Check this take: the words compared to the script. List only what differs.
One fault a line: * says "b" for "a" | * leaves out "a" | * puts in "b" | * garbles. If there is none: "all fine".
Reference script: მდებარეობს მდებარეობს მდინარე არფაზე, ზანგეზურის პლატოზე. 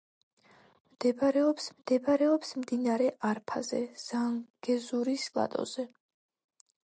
all fine